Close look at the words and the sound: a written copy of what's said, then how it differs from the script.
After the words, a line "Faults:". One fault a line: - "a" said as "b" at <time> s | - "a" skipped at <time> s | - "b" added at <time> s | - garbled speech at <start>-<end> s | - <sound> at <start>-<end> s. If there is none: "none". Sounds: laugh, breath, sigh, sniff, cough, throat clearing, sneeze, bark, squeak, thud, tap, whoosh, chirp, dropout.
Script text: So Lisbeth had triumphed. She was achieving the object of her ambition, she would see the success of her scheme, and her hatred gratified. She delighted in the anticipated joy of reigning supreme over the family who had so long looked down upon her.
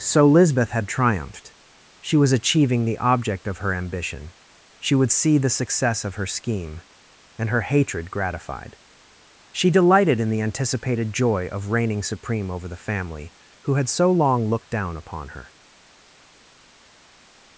So Lisbeth had triumphed. She was achieving the object of her ambition, she would see the success of her scheme, and her hatred gratified. She delighted in the anticipated joy of reigning supreme over the family who had so long looked down upon her.
Faults:
none